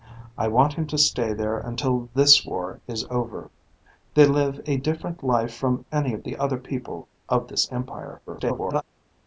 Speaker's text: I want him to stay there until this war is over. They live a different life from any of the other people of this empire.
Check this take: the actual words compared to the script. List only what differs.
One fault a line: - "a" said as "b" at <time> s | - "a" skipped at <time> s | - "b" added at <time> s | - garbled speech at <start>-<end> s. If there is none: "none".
- garbled speech at 8.3-8.8 s